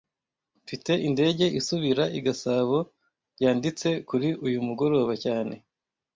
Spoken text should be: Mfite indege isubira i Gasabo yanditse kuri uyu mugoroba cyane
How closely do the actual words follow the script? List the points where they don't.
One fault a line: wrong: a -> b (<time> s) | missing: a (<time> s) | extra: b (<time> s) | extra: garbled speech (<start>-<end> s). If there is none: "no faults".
no faults